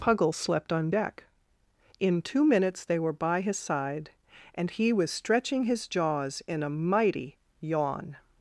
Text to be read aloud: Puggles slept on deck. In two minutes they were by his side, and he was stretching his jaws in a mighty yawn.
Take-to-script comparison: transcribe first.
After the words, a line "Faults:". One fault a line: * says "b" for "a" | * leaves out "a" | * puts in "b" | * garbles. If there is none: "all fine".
Puggles slept on deck. In two minutes they were by his side, and he was stretching his jaws in a mighty yawn.
Faults:
all fine